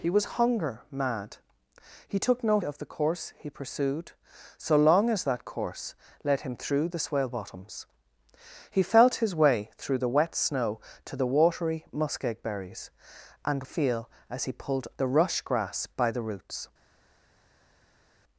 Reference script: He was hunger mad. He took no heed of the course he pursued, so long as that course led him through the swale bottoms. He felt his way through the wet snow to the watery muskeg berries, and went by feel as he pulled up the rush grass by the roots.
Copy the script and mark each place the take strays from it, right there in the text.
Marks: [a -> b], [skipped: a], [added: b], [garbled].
He was hunger mad. He took no [skipped: heed] of the course he pursued, so long as that course led him through the swale bottoms. He felt his way through the wet snow to the watery muskeg berries, and [skipped: went by] feel as he pulled [skipped: up] the rush grass by the roots.